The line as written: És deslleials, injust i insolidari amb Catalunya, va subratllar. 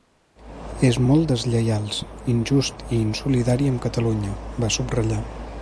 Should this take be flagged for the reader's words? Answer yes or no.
yes